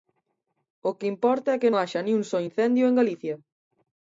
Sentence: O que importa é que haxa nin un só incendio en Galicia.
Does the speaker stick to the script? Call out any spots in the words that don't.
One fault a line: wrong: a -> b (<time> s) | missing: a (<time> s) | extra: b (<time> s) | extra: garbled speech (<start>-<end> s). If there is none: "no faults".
no faults